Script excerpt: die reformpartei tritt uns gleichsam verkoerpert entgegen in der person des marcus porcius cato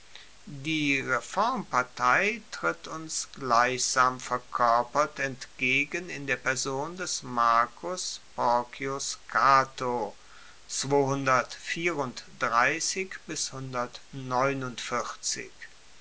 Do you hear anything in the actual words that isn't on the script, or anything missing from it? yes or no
no